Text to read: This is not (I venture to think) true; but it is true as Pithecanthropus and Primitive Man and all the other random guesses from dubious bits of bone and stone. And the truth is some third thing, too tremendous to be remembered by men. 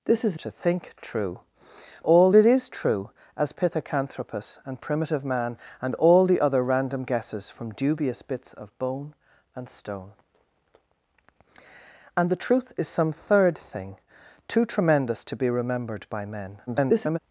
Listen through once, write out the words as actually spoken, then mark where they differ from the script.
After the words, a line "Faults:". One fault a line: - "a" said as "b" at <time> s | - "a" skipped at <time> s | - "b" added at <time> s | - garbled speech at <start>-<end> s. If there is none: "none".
This is to think) true; all it is true as Pithecanthropus and Primitive Man and all the other random guesses from dubious bits of bone and stone. And the truth is some third thing, too tremendous to be remembered by men. [garbled]
Faults:
- "not I venture" skipped at 0.4 s
- "but" said as "all" at 2.0 s
- garbled speech at 16.7-17.2 s